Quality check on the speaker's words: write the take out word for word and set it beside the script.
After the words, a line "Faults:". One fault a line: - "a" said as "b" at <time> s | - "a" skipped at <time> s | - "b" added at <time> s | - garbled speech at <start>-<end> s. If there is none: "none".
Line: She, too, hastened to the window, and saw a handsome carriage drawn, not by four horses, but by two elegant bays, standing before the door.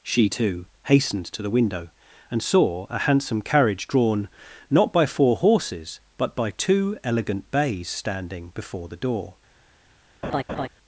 She, too, hastened to the window, and saw a handsome carriage drawn, not by four horses, but by two elegant bays, standing before the door.
Faults:
none